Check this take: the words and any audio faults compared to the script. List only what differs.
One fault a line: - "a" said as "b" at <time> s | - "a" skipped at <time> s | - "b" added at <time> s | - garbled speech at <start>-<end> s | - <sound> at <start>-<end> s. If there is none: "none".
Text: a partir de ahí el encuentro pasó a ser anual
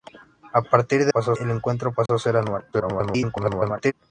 - "ahí" said as "pasó" at 1.1 s
- dropout at 2.1-2.1 s
- garbled speech at 2.7-3.9 s